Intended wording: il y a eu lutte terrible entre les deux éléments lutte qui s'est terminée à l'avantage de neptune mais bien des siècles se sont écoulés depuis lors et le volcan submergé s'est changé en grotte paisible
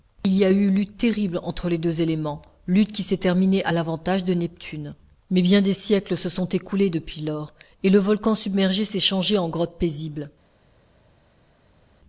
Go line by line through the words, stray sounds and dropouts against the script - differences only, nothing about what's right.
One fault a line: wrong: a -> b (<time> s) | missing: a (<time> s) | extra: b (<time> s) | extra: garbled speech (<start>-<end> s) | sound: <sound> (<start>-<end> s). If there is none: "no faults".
no faults